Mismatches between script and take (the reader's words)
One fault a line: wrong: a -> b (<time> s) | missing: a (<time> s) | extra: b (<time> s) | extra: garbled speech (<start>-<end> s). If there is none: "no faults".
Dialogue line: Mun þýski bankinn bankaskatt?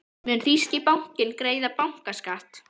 extra: greiða (1.4 s)